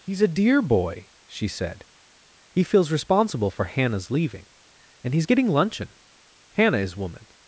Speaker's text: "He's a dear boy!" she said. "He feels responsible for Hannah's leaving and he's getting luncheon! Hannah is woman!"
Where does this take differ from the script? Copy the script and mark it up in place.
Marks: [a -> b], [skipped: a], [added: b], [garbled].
"He's a dear boy!" she said. "He feels responsible for Hannah's leaving and he's getting luncheon! Hannah is woman!"